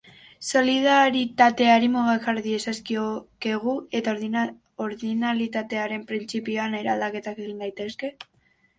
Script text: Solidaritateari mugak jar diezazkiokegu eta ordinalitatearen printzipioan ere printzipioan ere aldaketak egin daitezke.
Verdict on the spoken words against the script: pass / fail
fail